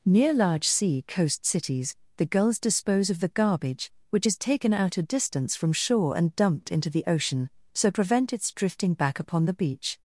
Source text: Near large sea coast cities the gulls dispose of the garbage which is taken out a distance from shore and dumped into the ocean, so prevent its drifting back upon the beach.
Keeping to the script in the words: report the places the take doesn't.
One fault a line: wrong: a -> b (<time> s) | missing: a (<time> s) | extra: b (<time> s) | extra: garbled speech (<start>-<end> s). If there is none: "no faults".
no faults